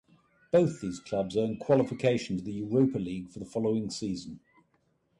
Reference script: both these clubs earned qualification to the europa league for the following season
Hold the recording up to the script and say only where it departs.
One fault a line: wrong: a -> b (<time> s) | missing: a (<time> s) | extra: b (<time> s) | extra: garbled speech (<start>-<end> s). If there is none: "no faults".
no faults